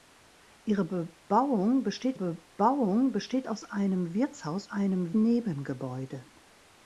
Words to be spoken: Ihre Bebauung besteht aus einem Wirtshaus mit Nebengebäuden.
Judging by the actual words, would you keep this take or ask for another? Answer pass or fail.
fail